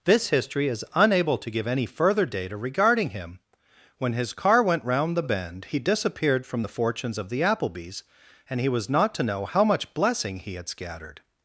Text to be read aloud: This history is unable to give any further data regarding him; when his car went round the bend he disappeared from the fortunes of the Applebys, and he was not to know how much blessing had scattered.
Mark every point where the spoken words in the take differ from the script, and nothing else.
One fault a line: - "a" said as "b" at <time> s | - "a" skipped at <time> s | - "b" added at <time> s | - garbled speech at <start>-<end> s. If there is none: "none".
- "he" added at 10.4 s